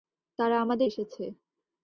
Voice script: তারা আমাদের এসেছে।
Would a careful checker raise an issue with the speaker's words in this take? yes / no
no